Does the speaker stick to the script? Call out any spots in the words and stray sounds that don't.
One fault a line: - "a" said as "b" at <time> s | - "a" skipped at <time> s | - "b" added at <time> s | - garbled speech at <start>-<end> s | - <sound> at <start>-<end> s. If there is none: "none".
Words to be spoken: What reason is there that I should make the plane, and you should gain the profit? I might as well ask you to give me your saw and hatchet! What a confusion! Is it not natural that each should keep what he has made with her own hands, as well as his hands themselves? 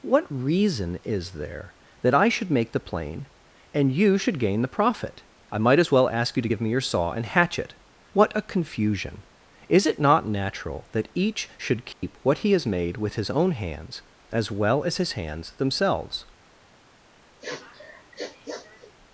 - dropout at 11.9-12.0 s
- "her" said as "his" at 13.1 s
- sniff at 17.4-18.9 s